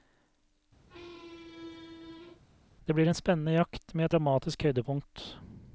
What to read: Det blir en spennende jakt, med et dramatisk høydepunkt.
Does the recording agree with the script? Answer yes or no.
yes